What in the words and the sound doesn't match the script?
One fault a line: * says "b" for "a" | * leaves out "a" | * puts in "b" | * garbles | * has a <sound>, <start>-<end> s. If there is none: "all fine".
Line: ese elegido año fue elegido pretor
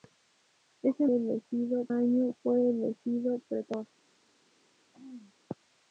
* has a throat clearing, 4.9-5.3 s